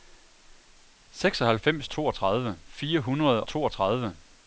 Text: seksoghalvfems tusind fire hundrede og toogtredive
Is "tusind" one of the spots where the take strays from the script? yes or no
yes